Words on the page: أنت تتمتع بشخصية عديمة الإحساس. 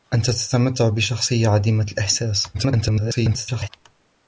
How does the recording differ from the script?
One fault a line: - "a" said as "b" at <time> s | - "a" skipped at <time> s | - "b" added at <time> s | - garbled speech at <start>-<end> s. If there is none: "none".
- garbled speech at 2.5-3.7 s